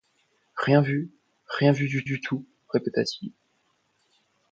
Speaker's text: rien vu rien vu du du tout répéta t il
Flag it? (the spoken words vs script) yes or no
no